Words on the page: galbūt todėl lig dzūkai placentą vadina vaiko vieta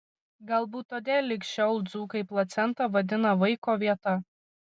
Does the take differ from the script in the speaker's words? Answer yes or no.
yes